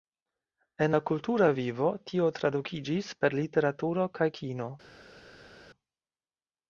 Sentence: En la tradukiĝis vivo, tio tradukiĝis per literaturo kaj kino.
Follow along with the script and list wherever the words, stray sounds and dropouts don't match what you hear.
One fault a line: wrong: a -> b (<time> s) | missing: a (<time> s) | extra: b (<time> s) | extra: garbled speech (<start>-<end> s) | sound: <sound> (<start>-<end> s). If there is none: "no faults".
wrong: tradukiĝis -> kultura (1.1 s)